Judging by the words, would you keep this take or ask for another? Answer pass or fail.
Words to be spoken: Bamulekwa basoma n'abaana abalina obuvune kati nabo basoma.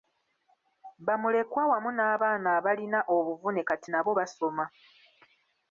fail